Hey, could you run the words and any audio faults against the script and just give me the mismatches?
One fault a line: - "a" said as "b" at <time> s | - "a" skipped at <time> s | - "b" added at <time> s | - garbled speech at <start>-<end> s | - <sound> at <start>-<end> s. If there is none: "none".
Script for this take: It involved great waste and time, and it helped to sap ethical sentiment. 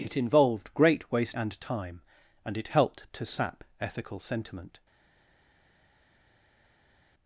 none